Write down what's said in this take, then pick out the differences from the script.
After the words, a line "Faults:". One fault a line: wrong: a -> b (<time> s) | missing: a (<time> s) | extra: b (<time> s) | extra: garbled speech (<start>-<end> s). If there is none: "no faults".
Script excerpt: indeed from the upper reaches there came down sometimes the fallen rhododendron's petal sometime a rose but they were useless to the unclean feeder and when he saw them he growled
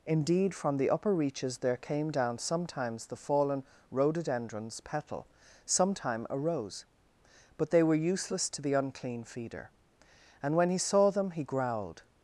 indeed from the upper reaches there came down sometimes the fallen rhododendron's petal sometime a rose but they were useless to the unclean feeder and when he saw them he growled
Faults:
no faults